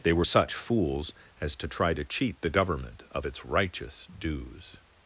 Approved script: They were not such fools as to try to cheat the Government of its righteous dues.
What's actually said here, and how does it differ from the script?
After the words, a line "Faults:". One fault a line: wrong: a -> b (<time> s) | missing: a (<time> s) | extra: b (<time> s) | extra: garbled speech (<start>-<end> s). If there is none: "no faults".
They were such fools as to try to cheat the Government of its righteous dues.
Faults:
missing: not (0.2 s)